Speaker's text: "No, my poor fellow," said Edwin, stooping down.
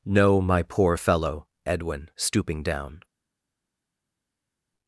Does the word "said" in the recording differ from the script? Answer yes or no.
yes